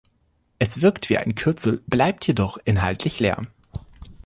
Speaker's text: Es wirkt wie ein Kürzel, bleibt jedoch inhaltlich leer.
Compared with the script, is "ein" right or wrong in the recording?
right